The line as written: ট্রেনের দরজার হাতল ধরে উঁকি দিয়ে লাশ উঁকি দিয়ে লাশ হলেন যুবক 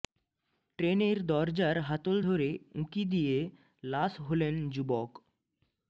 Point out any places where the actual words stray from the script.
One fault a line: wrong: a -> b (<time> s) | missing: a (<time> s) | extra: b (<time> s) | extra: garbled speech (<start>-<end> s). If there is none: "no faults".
missing: উঁকি দিয়ে লাশ (4.1 s)